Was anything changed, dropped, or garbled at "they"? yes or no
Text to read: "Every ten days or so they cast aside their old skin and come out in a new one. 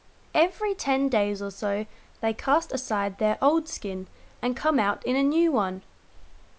no